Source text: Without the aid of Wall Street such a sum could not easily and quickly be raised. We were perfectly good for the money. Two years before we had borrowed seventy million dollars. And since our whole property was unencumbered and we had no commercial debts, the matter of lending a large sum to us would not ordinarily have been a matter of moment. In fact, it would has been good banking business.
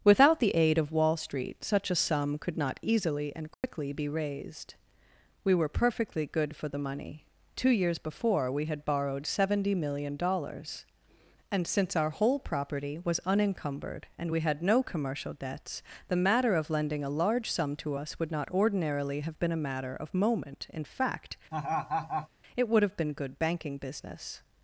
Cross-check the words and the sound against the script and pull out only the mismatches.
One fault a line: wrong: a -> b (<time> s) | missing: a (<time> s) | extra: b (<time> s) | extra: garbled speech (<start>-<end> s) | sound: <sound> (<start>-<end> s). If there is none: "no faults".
sound: dropout (3.5-3.6 s)
sound: laugh (21.5-22.3 s)
wrong: has -> have (22.8 s)